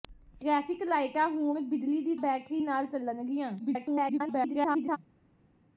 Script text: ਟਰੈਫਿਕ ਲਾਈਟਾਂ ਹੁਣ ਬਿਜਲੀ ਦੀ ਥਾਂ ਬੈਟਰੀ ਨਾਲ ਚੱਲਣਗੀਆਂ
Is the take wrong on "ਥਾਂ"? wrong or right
wrong